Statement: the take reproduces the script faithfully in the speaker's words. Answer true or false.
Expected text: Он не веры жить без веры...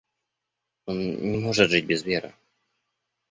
false